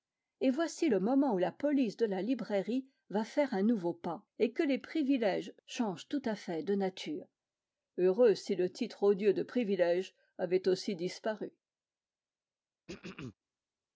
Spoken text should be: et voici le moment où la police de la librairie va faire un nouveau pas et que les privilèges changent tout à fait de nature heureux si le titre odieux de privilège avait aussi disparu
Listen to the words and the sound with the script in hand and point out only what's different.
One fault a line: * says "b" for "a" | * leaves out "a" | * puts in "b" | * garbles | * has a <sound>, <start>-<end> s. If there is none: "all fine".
* has a throat clearing, 12.9-13.3 s